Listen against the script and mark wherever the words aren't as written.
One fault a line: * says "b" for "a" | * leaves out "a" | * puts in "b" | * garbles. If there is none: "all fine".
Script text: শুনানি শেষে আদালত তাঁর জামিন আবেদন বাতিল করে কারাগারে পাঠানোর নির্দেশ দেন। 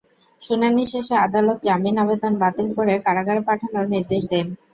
* leaves out "তাঁর"